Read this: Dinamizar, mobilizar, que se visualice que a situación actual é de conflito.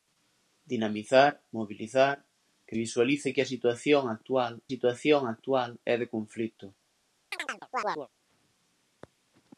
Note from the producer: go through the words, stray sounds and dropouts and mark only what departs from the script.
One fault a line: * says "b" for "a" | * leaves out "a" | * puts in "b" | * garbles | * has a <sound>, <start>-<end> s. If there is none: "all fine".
* leaves out "se"
* puts in "situación actual"
* has a chirp, 7.3-8.1 s